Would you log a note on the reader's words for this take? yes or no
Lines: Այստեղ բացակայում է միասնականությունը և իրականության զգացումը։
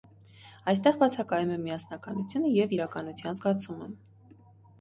no